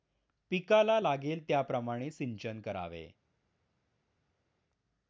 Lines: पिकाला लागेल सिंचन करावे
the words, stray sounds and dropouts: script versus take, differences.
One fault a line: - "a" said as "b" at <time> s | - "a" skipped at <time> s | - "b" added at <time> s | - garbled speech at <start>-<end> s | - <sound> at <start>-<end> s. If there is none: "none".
- "त्याप्रमाणे" added at 1.5 s